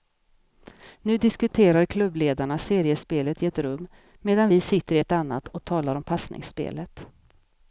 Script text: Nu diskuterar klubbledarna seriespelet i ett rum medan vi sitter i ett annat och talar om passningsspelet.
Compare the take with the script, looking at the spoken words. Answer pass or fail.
pass